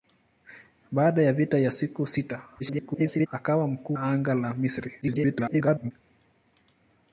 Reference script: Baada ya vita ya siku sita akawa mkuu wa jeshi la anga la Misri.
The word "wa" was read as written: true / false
false